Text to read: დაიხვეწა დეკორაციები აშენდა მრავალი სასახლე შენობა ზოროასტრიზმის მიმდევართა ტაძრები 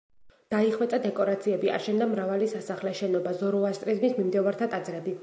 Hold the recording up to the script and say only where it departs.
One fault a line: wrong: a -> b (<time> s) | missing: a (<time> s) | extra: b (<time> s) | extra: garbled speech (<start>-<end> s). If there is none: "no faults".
no faults